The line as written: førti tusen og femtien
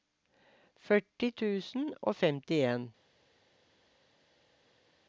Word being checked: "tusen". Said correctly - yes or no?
yes